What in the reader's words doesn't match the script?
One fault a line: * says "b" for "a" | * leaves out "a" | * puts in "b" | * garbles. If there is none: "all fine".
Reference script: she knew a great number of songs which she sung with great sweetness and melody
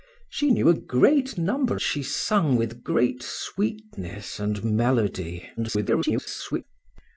* leaves out "of songs which"
* garbles